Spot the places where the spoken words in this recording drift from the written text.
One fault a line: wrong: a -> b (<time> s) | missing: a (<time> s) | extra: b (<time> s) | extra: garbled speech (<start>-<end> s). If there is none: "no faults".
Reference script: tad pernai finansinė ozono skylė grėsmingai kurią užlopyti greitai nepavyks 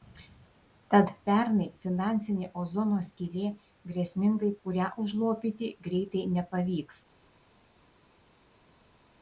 no faults